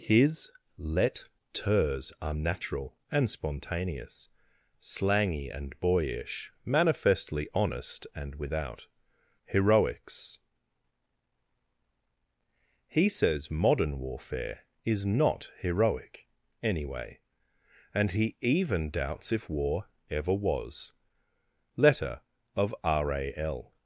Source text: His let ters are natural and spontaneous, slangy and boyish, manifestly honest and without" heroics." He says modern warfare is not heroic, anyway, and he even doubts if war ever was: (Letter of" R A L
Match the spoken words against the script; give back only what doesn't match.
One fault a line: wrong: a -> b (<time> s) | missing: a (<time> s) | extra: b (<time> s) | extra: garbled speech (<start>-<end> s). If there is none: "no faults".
no faults